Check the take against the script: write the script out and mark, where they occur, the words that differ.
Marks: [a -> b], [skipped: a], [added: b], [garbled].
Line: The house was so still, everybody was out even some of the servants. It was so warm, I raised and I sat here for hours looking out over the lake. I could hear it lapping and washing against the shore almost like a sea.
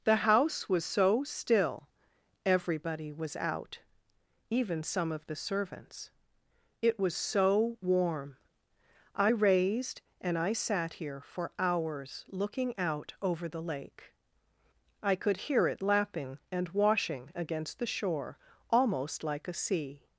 The house was so still, everybody was out even some of the servants. It was so warm, I raised and I sat here for hours looking out over the lake. I could hear it lapping and washing against the shore almost like a sea.